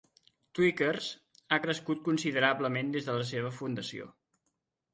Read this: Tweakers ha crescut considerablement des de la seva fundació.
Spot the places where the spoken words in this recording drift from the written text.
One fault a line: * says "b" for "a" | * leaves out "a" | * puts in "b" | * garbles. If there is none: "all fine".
all fine